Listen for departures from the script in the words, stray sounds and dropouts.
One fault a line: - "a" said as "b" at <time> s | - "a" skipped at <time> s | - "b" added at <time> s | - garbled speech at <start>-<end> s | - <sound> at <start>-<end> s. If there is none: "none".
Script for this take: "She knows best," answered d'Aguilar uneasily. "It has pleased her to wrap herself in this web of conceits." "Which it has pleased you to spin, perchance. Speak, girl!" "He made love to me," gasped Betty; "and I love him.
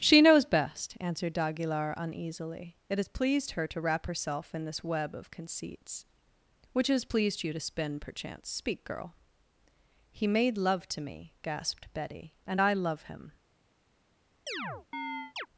- "it" skipped at 6.9 s
- chirp at 14.5-15.5 s